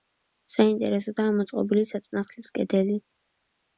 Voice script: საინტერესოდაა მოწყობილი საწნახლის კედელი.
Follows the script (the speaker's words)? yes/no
yes